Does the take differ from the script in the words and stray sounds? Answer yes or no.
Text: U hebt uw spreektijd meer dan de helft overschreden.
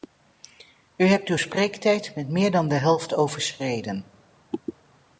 yes